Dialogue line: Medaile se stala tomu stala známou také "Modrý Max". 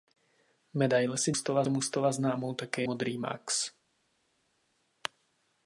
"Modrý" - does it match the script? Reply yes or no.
yes